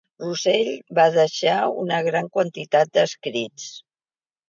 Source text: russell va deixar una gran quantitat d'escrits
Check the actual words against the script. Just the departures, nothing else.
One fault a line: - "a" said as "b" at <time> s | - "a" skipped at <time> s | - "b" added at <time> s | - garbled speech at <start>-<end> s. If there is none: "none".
none